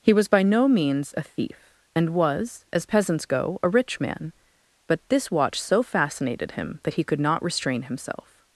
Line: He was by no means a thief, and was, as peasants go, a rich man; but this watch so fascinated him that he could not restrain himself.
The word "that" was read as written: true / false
true